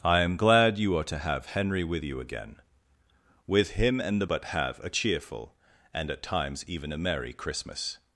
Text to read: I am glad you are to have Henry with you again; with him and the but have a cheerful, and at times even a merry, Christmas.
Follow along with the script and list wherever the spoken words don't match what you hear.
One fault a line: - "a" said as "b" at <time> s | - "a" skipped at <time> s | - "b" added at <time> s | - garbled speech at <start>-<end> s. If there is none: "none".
none